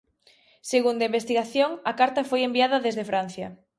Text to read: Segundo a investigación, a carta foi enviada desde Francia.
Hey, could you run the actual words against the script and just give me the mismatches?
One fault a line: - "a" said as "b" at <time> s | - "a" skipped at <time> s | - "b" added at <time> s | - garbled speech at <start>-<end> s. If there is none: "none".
none